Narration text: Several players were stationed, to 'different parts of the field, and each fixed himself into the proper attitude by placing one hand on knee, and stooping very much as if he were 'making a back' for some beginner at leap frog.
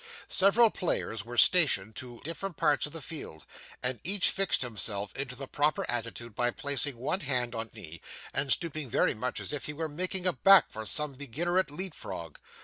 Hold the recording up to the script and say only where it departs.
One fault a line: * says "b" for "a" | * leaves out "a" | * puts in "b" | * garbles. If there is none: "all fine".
all fine